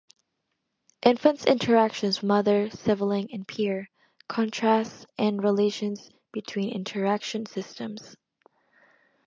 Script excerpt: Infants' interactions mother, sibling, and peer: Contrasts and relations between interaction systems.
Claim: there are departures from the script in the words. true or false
false